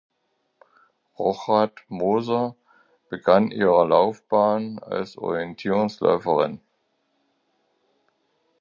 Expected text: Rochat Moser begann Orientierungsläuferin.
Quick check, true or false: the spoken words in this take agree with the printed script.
false